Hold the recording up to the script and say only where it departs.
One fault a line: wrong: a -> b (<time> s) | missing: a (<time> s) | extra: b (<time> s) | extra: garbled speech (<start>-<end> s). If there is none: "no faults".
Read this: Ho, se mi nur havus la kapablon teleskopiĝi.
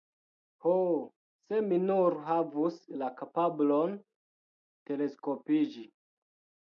no faults